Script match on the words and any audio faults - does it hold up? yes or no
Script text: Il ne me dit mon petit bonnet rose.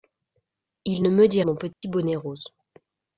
no